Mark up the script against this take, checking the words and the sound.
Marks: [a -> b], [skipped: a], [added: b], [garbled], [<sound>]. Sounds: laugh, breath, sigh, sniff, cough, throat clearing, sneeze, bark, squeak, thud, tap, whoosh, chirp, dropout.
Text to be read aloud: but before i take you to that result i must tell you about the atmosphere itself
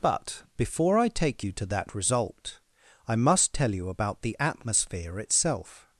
but before i take you to that result i must tell you about the atmosphere itself